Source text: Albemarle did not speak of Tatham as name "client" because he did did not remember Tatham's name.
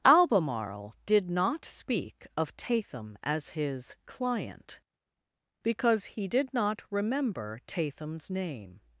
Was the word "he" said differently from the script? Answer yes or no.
no